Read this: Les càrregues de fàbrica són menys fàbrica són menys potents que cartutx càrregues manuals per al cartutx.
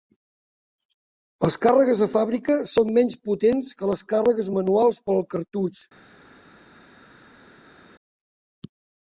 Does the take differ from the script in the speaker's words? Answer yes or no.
yes